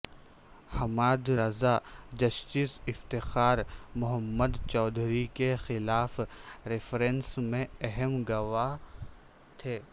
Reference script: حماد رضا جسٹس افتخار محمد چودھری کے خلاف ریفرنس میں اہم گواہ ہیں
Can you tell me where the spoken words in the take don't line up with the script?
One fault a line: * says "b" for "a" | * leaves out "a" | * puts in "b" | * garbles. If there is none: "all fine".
* says "تھے" for "ہیں"